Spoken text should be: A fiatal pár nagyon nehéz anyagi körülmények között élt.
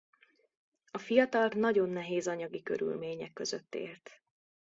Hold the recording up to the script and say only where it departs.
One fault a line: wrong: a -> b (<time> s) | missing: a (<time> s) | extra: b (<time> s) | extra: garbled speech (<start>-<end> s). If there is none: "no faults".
missing: pár (1.5 s)